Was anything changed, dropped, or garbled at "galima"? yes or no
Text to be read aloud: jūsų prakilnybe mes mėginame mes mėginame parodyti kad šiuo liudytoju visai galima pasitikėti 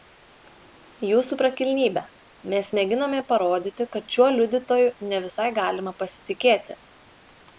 no